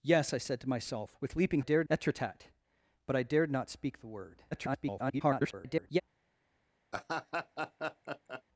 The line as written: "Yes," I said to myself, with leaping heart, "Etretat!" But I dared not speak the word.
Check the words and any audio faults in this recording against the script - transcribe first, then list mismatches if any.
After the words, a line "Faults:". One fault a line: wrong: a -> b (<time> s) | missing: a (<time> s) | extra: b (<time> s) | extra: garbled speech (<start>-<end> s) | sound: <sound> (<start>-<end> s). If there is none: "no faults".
"Yes," I said to myself, with leaping dared, "Etretat!" But I dared not speak the word. [garbled]
Faults:
wrong: heart -> dared (1.6 s)
extra: garbled speech (4.5-6.0 s)
sound: laugh (6.9-8.4 s)